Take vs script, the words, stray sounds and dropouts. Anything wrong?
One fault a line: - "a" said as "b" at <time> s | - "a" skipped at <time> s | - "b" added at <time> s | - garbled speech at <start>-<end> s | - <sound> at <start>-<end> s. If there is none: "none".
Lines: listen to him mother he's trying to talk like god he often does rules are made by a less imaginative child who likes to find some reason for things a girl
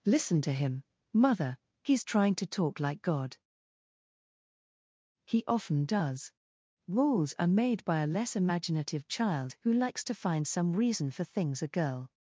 none